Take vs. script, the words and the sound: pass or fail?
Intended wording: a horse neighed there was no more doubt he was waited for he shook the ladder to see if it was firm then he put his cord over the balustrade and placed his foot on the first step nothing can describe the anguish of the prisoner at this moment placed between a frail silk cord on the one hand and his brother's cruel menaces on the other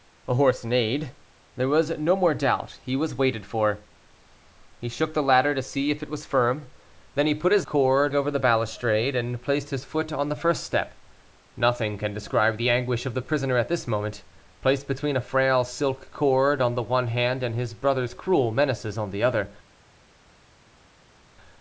pass